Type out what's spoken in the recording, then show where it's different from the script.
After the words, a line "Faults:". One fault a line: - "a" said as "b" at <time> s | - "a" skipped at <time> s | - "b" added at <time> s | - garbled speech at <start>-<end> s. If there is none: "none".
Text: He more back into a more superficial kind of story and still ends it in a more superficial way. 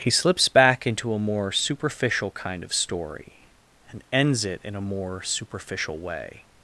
He slips back into a more superficial kind of story and ends it in a more superficial way.
Faults:
- "more" said as "slips" at 0.1 s
- "still" skipped at 4.0 s